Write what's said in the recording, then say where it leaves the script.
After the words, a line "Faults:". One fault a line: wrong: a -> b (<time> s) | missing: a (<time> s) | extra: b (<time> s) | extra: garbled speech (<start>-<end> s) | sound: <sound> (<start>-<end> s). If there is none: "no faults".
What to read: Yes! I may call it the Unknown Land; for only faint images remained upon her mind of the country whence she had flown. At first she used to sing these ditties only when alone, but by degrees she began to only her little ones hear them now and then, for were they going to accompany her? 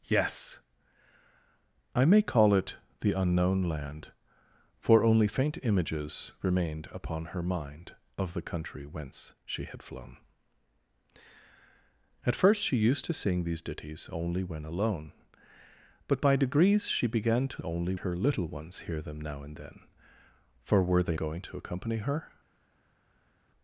Yes! I may call it the Unknown Land; for only faint images remained upon her mind of the country whence she had flown. At first she used to sing these ditties only when alone, but by degrees she began to only her little ones hear them now and then, for were they going to accompany her?
Faults:
no faults